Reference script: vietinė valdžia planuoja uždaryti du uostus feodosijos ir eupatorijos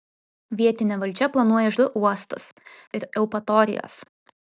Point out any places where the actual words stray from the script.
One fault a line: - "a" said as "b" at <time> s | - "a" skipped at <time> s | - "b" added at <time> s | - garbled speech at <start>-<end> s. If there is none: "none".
- "uždaryti" skipped at 1.7 s
- "feodosijos" skipped at 2.5 s